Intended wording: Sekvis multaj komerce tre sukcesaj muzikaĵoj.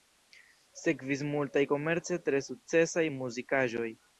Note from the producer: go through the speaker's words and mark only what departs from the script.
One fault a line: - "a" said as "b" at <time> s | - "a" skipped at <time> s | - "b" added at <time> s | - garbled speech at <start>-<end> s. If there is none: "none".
none